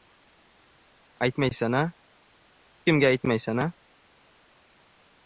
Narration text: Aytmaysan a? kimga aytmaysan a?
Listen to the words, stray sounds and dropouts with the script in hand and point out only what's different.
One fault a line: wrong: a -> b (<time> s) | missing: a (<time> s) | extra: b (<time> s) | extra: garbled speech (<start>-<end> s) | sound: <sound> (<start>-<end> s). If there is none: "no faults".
no faults